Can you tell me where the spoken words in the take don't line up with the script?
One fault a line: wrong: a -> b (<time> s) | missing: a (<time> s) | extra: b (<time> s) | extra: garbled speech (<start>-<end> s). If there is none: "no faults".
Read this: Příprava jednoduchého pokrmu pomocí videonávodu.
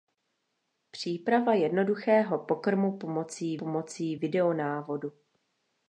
extra: pomocí (3.6 s)